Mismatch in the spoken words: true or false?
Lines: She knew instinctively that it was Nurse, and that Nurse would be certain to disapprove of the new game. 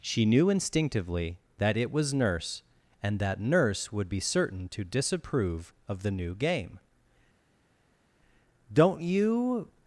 true